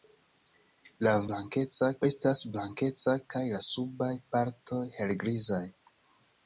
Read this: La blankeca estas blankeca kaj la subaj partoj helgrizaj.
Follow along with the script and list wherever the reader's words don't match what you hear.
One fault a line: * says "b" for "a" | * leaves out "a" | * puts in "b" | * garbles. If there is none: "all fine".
all fine